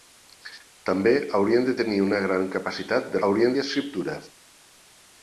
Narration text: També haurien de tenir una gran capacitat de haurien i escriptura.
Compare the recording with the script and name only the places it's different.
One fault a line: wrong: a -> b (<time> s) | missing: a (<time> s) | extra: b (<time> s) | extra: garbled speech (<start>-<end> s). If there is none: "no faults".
no faults